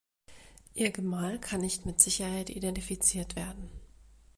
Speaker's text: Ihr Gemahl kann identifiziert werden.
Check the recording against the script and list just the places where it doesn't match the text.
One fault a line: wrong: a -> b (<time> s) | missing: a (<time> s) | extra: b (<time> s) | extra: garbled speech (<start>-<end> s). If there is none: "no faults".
extra: nicht mit Sicherheit (1.6 s)